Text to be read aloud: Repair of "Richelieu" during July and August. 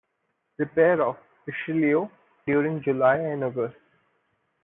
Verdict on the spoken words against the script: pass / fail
pass